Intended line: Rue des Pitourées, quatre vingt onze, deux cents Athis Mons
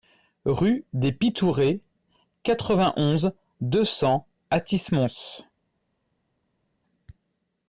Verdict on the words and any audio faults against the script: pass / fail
pass